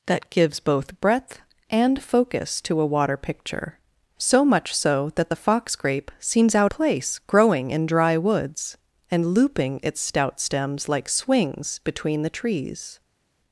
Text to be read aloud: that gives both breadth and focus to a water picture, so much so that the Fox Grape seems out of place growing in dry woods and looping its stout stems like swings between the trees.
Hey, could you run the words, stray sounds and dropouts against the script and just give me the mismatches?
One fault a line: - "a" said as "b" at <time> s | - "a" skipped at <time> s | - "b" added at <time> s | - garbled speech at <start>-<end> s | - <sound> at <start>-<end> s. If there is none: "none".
- "of" skipped at 6.7 s